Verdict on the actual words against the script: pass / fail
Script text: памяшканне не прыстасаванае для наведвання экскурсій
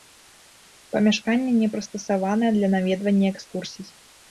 pass